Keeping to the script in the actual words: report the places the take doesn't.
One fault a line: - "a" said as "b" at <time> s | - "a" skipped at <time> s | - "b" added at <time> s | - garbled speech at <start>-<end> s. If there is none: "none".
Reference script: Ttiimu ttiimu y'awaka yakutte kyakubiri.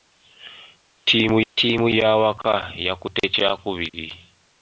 none